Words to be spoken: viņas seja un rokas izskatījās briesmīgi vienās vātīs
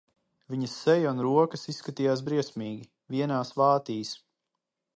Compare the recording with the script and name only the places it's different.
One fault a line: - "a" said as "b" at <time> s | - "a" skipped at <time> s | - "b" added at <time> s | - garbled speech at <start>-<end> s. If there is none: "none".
none